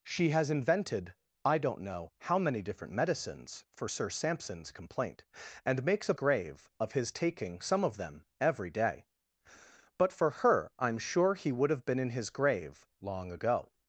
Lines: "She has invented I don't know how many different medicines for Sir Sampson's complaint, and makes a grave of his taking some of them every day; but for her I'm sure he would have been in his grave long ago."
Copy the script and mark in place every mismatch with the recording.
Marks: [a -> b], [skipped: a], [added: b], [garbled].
"She has invented I don't know how many different medicines for Sir Sampson's complaint, and makes a grave of his taking some of them every day; but for her I'm sure he would have been in his grave long ago."